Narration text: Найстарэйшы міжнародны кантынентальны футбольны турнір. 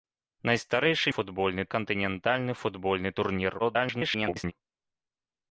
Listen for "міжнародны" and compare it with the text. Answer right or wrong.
wrong